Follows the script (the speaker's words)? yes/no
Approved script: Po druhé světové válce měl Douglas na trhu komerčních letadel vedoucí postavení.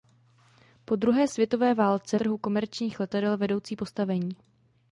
no